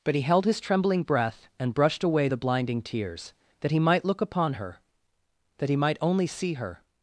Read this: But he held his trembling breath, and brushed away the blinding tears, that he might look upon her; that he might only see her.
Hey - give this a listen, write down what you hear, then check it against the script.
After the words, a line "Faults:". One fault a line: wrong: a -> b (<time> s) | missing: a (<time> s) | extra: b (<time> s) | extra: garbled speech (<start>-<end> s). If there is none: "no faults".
But he held his trembling breath, and brushed away the blinding tears, that he might look upon her; that he might only see her.
Faults:
no faults